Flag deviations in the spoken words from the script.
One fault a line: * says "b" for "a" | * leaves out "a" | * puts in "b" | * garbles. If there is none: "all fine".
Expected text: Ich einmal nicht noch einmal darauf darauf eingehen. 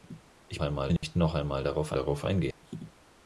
all fine